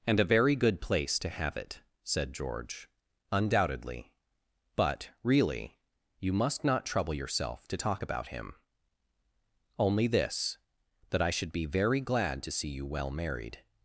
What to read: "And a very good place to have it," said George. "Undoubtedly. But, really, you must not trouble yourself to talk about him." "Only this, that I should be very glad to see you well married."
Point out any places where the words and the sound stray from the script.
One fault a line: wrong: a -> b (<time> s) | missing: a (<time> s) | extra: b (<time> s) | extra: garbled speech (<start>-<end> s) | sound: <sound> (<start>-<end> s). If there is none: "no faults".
no faults